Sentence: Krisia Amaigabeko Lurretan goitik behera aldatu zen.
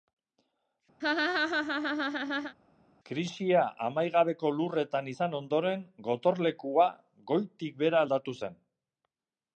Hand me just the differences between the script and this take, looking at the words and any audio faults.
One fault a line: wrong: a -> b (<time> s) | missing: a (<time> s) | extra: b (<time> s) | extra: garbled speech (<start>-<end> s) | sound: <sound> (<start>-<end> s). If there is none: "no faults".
sound: laugh (1.0-2.6 s)
extra: izan ondoren Gotorlekua (5.1 s)